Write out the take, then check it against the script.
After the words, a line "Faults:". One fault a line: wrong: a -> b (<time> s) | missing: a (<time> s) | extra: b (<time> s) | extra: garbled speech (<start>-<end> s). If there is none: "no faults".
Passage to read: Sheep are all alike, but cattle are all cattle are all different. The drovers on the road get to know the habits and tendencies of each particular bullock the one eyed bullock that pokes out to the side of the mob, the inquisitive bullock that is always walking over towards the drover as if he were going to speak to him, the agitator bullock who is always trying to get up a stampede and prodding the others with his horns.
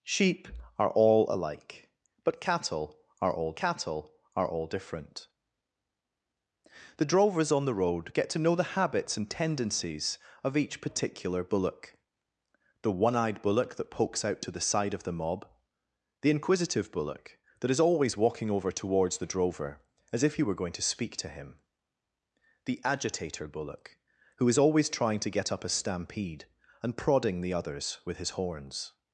Sheep are all alike, but cattle are all cattle are all different. The drovers on the road get to know the habits and tendencies of each particular bullock the one eyed bullock that pokes out to the side of the mob, the inquisitive bullock that is always walking over towards the drover as if he were going to speak to him, the agitator bullock who is always trying to get up a stampede and prodding the others with his horns.
Faults:
no faults